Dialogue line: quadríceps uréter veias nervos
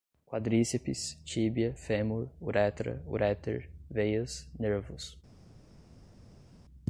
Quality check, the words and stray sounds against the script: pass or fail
fail